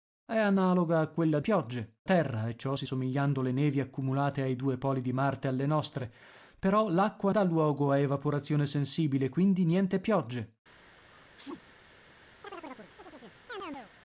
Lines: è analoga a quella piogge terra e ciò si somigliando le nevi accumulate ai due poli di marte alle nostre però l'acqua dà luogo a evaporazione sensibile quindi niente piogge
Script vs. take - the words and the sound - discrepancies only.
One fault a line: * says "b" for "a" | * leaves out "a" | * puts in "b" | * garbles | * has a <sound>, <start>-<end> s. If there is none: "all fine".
* has a sneeze, 11.0-11.7 s
* has a chirp, 12.4-13.9 s